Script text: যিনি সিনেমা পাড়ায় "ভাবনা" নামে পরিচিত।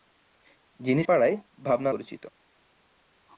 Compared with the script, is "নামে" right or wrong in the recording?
wrong